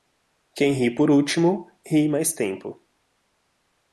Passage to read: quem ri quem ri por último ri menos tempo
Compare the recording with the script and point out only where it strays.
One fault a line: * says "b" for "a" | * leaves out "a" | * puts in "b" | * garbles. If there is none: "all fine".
* leaves out "quem ri"
* says "mais" for "menos"